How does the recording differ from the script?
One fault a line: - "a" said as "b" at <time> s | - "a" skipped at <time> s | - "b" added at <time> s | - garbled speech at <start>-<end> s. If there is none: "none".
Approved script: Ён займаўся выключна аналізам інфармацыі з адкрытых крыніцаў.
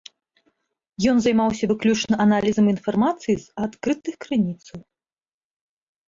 none